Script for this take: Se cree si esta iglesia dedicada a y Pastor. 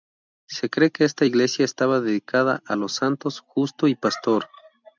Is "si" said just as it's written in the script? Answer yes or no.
no